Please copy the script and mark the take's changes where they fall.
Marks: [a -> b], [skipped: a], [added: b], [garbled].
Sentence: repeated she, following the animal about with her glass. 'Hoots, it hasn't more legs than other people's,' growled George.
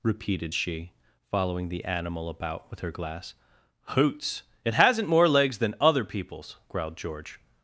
repeated she, following the animal about with her glass. 'Hoots, it hasn't more legs than other people's,' growled George.